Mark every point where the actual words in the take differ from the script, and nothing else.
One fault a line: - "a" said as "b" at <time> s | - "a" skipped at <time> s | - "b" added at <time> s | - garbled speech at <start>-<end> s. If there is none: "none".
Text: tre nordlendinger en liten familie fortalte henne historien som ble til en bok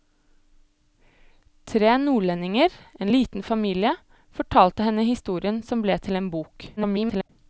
- garbled speech at 6.8-7.3 s